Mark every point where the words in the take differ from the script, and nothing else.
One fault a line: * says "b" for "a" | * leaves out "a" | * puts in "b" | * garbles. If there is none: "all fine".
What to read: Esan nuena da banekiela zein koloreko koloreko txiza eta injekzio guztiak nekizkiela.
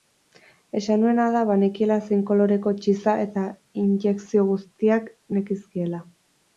* leaves out "koloreko"